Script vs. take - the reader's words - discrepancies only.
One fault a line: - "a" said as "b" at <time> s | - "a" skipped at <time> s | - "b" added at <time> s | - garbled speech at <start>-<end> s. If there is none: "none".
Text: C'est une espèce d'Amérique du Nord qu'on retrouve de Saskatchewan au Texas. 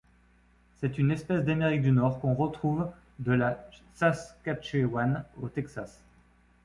- "la" added at 3.3 s